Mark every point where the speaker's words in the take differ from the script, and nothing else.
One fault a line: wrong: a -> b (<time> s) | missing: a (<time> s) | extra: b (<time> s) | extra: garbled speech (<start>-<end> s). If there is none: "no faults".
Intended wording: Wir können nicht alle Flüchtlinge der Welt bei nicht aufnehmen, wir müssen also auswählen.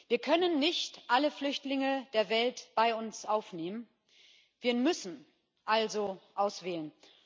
wrong: nicht -> uns (3.0 s)